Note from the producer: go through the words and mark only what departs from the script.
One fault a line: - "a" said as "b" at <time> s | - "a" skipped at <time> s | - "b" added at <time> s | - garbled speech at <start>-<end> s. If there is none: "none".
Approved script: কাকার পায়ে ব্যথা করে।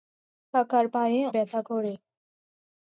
none